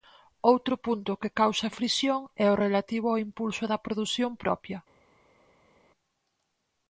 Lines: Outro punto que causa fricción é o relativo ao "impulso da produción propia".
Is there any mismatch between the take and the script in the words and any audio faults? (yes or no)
no